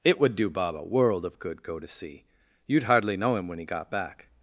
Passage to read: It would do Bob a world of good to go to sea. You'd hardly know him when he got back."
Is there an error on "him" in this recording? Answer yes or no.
no